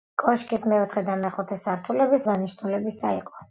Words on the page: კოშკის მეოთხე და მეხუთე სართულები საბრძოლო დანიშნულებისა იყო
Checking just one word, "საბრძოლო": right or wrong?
wrong